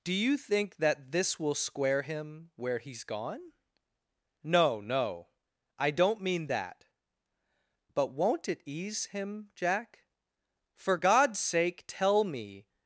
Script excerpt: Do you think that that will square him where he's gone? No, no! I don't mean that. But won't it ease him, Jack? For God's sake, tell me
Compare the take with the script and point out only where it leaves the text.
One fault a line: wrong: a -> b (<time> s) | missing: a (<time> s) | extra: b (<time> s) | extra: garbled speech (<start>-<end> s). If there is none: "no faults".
wrong: that -> this (1.1 s)